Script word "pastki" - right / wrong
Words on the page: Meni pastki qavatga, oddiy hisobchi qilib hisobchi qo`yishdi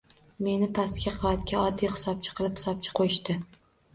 right